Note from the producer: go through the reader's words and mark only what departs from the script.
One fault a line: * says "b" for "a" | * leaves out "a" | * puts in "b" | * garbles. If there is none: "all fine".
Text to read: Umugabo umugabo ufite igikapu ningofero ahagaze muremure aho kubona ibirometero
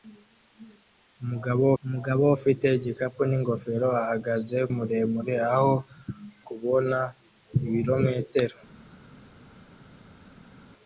all fine